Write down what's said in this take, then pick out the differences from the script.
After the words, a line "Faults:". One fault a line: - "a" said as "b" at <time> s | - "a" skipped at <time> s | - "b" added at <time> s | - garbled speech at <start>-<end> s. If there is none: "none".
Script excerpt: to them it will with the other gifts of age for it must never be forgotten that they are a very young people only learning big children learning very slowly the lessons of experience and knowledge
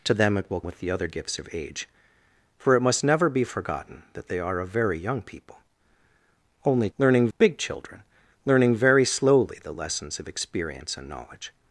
to them it will with the other gifts of age for it must never be forgotten that they are a very young people only learning big children learning very slowly the lessons of experience and knowledge
Faults:
none